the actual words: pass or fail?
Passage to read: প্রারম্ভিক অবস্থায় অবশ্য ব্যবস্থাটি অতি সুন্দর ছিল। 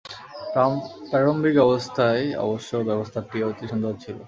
pass